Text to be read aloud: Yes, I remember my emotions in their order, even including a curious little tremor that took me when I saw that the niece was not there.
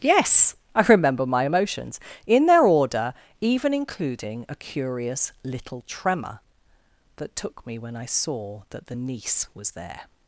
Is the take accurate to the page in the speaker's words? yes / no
no